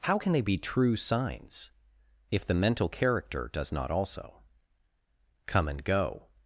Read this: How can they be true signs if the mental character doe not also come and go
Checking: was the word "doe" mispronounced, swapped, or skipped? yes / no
yes